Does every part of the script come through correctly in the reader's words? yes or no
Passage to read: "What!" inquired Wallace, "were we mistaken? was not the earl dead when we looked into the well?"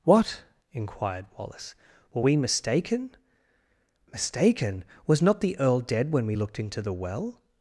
no